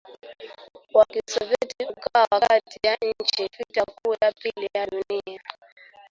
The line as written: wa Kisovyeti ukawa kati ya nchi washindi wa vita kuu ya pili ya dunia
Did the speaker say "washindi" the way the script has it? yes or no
no